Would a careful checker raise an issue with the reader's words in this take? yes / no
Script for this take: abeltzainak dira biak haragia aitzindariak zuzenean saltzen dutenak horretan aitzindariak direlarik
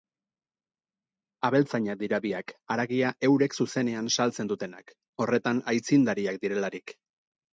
yes